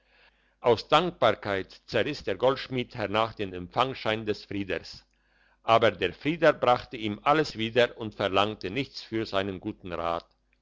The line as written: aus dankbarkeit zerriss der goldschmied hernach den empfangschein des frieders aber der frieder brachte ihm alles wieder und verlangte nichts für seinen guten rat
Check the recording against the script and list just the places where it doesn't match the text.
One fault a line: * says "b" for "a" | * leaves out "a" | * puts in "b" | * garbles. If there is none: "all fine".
all fine